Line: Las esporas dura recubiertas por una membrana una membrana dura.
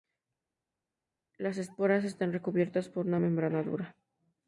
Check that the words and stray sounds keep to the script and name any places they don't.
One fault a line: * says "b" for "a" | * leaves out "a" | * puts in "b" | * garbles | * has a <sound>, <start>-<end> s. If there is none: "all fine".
* says "están" for "dura"
* leaves out "una membrana"